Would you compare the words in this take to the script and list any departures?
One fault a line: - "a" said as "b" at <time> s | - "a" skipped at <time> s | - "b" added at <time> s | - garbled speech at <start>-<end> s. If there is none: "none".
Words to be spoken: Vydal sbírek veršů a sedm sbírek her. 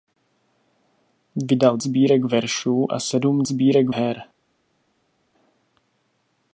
none